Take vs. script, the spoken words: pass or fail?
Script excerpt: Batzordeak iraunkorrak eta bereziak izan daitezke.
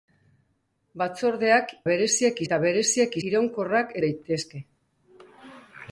fail